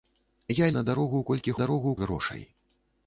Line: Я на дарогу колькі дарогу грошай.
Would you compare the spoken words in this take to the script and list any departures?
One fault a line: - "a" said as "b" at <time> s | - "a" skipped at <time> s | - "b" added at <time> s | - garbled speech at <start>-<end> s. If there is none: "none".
none